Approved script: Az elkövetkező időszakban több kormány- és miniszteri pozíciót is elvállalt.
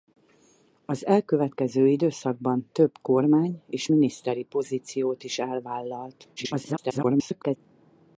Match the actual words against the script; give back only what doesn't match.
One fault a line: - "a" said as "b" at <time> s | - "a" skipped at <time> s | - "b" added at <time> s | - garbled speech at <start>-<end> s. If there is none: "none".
- garbled speech at 6.4-7.6 s